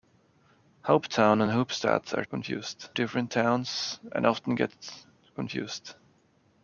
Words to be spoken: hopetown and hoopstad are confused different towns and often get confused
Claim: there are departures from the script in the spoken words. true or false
false